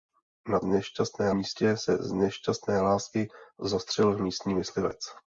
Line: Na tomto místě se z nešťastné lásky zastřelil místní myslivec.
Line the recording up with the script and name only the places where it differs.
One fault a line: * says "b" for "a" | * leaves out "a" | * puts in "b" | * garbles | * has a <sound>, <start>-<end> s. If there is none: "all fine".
* says "nešťastné" for "tomto"